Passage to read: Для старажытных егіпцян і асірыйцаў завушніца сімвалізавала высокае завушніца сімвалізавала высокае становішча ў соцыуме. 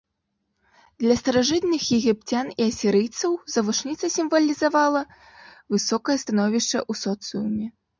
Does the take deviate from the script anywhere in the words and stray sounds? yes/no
yes